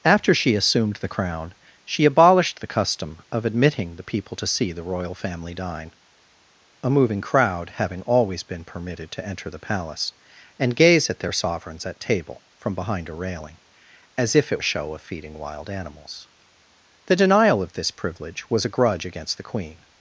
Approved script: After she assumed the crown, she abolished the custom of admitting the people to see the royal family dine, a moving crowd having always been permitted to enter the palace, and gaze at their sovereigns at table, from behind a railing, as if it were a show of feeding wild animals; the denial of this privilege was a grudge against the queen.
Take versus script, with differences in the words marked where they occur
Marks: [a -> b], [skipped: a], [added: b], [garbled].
After she assumed the crown, she abolished the custom of admitting the people to see the royal family dine, a moving crowd having always been permitted to enter the palace, and gaze at their sovereigns at table, from behind a railing, as if it [skipped: were] a show of feeding wild animals; the denial of this privilege was a grudge against the queen.